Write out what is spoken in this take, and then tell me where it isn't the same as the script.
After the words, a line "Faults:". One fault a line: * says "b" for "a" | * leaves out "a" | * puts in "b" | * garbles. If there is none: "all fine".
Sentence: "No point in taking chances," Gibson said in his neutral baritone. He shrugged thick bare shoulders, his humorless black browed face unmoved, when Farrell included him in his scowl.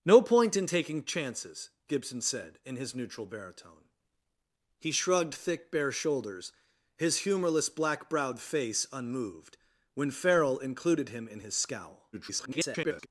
"No point in taking chances," Gibson said in his neutral baritone. He shrugged thick bare shoulders, his humorless black browed face unmoved, when Farrell included him in his scowl. [garbled]
Faults:
* garbles